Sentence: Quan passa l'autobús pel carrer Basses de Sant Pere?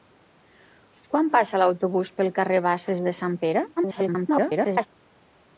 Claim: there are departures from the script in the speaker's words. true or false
true